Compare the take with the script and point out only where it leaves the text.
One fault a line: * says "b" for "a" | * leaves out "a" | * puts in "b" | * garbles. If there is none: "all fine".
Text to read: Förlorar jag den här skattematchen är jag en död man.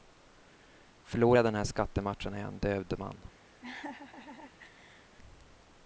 all fine